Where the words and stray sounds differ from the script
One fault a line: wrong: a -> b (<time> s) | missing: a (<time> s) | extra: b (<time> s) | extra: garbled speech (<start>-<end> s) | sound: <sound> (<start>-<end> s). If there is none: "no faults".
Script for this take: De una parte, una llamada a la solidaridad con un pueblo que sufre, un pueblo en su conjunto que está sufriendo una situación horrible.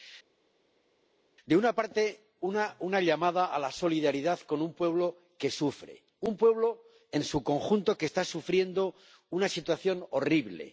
no faults